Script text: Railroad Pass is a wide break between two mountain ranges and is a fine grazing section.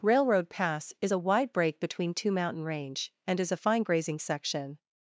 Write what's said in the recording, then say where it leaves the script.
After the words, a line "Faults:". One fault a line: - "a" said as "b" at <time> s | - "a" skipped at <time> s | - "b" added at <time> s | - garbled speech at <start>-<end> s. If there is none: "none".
Railroad Pass is a wide break between two mountain range and is a fine grazing section.
Faults:
- "ranges" said as "range" at 2.6 s